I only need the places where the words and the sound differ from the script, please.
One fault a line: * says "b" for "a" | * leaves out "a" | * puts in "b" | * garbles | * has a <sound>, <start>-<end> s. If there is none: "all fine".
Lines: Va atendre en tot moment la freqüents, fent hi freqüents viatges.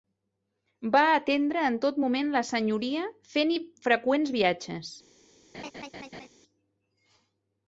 * says "senyoria" for "freqüents"
* has a laugh, 5.5-6.3 s